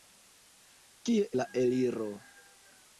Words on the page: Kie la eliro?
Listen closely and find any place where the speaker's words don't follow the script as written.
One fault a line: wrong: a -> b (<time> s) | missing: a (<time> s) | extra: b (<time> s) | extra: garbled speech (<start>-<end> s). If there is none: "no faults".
no faults